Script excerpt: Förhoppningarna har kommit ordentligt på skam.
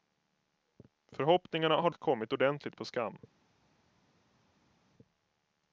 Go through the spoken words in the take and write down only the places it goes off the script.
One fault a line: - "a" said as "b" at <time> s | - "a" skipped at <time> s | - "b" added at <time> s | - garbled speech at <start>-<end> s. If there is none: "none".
none